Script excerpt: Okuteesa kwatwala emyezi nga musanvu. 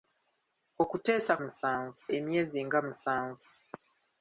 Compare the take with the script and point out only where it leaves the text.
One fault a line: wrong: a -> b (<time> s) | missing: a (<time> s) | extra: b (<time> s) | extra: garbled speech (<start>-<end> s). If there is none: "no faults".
wrong: kwatwala -> musanvu (1.4 s)